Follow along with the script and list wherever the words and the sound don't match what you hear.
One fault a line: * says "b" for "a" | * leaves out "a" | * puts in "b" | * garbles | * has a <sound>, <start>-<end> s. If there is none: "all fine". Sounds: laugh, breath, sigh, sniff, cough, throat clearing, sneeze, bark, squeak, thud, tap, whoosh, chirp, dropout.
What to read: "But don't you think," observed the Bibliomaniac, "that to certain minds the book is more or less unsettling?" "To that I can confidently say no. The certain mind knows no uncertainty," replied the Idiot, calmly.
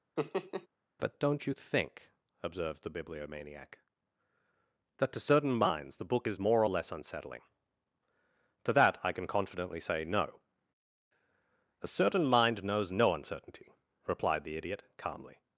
* has a laugh, 0.2-0.7 s
* says "A" for "The"